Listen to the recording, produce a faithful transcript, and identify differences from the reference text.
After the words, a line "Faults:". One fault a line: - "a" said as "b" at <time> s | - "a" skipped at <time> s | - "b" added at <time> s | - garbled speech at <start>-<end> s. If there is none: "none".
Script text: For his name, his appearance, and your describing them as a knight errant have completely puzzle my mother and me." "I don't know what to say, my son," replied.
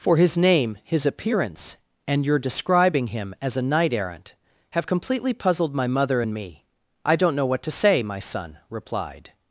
For his name, his appearance, and your describing him as a knight errant have completely puzzled my mother and me." "I don't know what to say, my son," replied.
Faults:
- "them" said as "him" at 3.1 s
- "puzzle" said as "puzzled" at 5.3 s